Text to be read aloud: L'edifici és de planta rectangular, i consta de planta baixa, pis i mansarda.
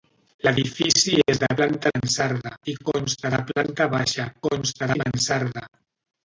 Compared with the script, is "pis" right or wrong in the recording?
wrong